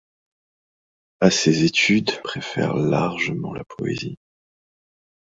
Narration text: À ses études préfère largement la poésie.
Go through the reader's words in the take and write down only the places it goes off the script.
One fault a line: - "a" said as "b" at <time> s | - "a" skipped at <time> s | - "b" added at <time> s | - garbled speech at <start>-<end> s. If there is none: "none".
none